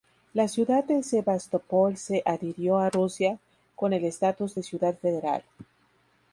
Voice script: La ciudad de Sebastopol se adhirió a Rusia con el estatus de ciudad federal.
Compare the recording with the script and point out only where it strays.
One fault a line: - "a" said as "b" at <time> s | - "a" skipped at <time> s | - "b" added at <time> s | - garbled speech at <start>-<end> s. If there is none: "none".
none